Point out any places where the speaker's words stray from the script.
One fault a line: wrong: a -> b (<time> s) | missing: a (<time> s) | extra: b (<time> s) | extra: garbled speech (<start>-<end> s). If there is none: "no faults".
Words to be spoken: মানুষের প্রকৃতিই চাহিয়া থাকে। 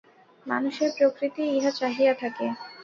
extra: ইহা (1.6 s)